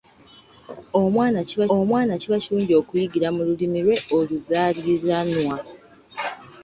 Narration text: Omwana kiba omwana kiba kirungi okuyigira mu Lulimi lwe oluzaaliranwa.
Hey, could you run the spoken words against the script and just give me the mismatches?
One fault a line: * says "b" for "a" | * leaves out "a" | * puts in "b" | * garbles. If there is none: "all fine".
all fine